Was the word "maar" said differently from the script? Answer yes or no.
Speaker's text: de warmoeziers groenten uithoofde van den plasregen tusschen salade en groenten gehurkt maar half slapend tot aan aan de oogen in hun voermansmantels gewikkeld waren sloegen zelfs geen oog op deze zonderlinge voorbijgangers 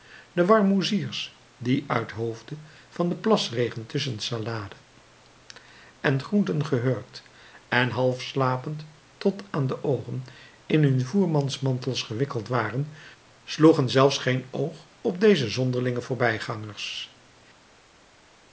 yes